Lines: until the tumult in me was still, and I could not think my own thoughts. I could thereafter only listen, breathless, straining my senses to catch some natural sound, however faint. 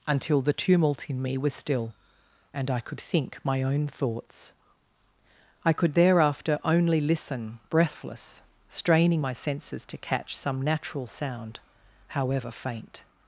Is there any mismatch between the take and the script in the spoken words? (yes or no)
yes